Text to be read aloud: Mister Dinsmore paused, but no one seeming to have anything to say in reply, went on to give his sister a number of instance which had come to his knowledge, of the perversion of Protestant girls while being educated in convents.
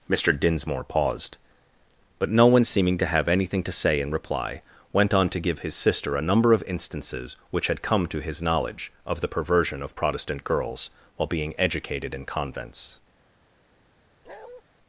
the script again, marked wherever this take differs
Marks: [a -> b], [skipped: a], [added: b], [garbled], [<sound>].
Mister Dinsmore paused, but no one seeming to have anything to say in reply, went on to give his sister a number of [instance -> instances] which had come to his knowledge, of the perversion of Protestant girls while being educated in convents. [bark]